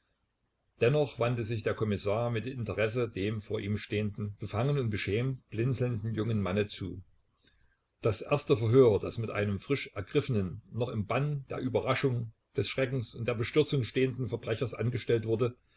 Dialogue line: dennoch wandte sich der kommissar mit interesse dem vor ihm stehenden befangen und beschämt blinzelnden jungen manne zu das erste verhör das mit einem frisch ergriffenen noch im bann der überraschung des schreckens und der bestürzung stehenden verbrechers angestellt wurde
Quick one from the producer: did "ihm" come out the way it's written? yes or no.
yes